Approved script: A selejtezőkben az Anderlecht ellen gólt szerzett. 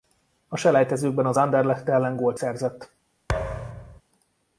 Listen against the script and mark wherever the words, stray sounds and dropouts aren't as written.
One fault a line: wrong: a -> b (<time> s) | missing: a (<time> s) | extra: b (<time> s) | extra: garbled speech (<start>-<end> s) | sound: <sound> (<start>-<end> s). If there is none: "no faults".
sound: thud (3.3-4.0 s)